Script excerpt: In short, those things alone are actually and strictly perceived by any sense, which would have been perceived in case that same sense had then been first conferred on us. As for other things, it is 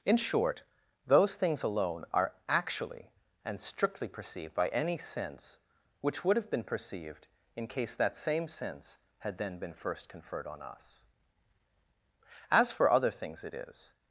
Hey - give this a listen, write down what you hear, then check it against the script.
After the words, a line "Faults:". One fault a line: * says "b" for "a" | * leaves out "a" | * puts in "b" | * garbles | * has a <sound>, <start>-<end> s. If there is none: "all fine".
In short, those things alone are actually and strictly perceived by any sense, which would have been perceived in case that same sense had then been first conferred on us. As for other things, it is
Faults:
all fine